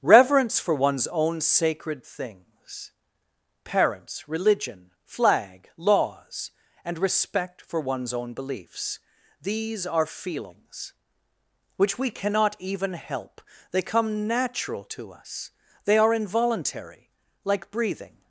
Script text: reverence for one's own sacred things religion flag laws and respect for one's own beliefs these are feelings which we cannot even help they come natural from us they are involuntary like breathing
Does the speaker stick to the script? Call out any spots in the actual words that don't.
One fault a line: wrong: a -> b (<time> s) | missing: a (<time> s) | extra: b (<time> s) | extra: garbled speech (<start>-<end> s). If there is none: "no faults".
extra: parents (3.6 s)
wrong: from -> to (14.8 s)